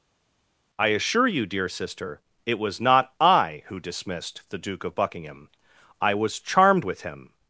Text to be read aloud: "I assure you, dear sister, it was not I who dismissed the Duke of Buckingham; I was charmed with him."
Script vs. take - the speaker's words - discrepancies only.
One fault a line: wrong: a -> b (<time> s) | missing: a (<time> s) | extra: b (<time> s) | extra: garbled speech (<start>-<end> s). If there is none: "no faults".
no faults